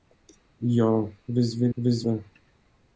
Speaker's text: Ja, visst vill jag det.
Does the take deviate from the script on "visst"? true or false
false